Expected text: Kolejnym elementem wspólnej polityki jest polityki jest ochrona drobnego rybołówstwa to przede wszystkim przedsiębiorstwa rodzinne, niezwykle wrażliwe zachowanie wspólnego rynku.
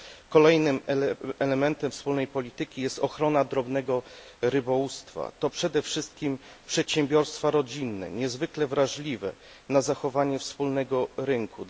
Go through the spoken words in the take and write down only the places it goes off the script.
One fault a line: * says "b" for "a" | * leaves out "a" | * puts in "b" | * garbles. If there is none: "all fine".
* leaves out "polityki jest"
* puts in "na"